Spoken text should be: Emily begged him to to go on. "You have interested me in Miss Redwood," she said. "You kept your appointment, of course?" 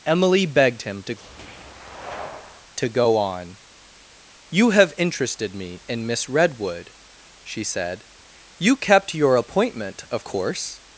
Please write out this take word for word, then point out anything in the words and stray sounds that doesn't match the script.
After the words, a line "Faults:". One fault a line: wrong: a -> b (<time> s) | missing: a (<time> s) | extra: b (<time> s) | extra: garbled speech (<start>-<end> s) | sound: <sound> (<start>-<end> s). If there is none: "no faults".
Emily begged him to to go on. "You have interested me in Miss Redwood," she said. "You kept your appointment, of course?"
Faults:
no faults